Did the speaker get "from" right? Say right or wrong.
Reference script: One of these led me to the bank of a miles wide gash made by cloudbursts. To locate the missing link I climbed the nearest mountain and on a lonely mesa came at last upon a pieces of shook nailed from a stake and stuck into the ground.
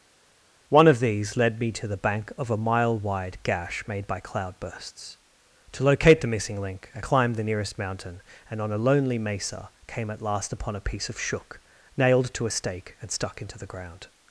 wrong